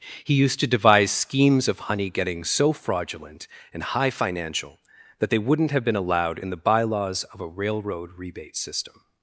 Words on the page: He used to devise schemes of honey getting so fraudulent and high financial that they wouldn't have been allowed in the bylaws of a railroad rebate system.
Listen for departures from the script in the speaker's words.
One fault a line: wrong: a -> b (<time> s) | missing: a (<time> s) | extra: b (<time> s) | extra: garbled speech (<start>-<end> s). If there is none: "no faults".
no faults